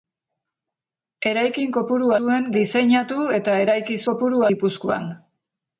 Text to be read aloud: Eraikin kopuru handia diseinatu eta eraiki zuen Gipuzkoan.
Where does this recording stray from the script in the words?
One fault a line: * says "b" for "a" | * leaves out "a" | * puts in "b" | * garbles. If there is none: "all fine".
* says "zuen" for "handia"
* says "kopuru" for "zuen"